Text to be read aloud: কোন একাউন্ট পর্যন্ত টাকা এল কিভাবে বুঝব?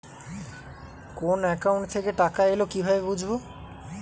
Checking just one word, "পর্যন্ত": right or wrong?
wrong